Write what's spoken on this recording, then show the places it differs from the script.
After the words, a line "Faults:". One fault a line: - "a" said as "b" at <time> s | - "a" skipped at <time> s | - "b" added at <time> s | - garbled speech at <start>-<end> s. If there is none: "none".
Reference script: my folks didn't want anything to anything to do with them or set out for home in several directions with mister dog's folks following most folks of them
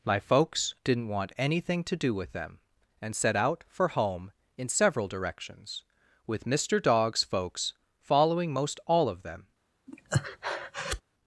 my folks didn't want anything to do with them and set out for home in several directions with mister dog's folks following most all of them
Faults:
- "anything to" skipped at 1.9 s
- "or" said as "and" at 3.0 s
- "folks" said as "all" at 8.9 s